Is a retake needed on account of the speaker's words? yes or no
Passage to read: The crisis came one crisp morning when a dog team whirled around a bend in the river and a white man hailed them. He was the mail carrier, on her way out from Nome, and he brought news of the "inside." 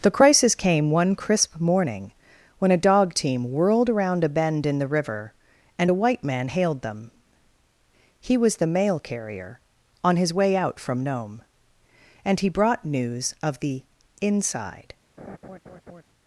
yes